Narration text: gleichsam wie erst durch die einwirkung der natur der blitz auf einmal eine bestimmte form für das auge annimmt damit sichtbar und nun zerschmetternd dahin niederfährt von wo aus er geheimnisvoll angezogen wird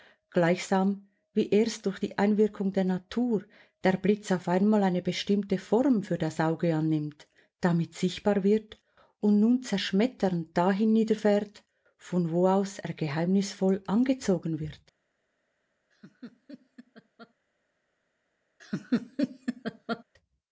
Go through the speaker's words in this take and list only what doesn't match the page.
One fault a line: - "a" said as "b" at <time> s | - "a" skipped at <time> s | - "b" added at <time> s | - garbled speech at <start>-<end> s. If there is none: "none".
- "wird" added at 8.4 s